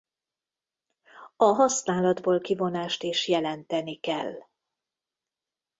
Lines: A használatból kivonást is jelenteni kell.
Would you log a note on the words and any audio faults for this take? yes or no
no